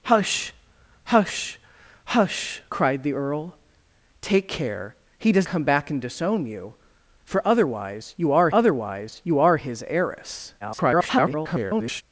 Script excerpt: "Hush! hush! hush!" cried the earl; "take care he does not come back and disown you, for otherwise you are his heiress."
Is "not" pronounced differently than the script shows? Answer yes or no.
yes